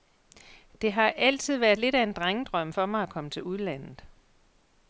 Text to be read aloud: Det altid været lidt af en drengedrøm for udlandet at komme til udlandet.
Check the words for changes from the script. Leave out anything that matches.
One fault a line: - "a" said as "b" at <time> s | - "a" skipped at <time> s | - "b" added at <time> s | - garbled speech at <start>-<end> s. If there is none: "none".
- "har" added at 0.9 s
- "udlandet" said as "mig" at 2.9 s